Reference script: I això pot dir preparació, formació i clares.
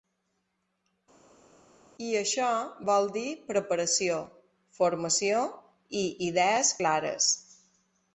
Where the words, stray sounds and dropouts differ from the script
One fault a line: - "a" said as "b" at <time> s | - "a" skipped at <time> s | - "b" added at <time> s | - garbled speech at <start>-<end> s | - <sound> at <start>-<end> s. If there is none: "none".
- "pot" said as "vol" at 2.9 s
- "idees" added at 6.3 s